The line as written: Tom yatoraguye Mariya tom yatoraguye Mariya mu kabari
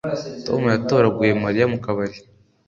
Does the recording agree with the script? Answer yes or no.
no